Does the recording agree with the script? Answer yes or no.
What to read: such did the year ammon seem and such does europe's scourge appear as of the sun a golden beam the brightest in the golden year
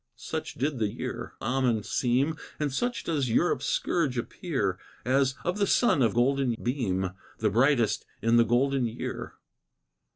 yes